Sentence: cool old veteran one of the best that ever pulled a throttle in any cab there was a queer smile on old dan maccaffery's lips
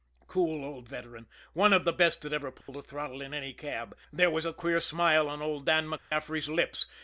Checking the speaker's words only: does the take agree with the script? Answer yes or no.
yes